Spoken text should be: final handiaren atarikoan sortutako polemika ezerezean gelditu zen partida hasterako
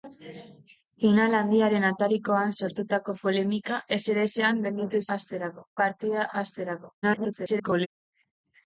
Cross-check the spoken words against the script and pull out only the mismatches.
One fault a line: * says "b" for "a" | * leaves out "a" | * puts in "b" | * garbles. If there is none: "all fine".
* says "hasterako" for "zen"
* garbles